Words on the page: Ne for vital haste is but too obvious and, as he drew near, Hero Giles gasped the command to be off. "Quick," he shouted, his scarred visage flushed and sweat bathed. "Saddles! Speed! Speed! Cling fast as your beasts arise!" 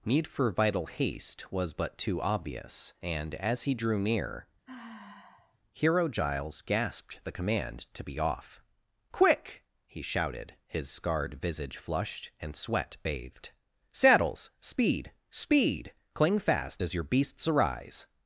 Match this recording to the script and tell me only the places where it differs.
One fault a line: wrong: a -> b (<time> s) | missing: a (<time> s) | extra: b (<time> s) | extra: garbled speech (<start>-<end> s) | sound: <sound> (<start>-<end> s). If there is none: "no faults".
wrong: Ne -> Need (0.0 s)
wrong: is -> was (1.5 s)
sound: sigh (4.6-5.6 s)